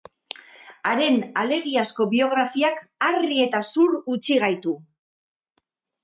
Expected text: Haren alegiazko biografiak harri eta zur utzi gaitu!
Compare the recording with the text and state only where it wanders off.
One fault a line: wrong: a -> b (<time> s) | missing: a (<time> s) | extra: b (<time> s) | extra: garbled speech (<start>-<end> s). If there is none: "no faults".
no faults